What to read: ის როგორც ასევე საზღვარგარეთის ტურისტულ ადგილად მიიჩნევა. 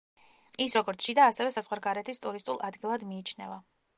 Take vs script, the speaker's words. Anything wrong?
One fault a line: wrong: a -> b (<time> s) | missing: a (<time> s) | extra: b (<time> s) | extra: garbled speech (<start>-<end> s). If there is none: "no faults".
extra: შიდა (1.1 s)